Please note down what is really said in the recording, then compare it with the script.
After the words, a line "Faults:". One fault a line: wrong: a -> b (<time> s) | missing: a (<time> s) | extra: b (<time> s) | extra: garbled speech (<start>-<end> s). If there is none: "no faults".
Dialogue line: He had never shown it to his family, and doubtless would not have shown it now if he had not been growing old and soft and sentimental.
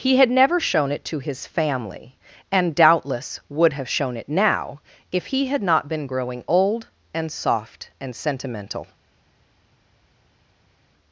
He had never shown it to his family, and doubtless would have shown it now if he had not been growing old and soft and sentimental.
Faults:
missing: not (3.7 s)